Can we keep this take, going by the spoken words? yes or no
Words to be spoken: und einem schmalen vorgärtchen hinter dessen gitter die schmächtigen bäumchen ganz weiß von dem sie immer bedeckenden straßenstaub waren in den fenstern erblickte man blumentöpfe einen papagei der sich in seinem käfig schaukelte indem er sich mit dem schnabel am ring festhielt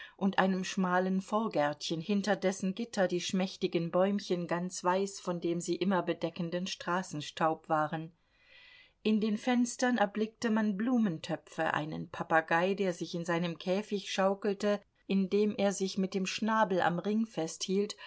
yes